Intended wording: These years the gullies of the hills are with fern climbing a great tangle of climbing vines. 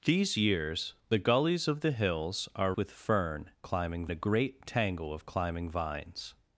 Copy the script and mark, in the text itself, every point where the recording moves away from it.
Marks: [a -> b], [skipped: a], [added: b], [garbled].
These years the gullies of the hills are with fern climbing a great tangle of climbing vines.